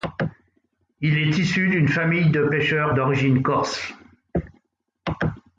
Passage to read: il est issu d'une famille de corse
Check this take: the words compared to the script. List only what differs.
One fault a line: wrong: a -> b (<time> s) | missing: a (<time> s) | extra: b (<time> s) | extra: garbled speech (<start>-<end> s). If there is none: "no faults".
extra: pêcheurs d'origine (2.4 s)